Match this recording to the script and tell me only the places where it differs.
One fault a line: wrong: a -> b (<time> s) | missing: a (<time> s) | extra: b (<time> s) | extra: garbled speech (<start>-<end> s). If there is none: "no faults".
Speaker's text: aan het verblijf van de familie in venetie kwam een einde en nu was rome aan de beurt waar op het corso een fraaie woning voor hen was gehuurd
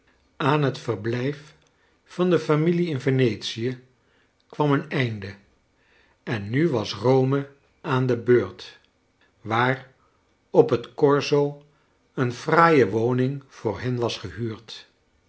no faults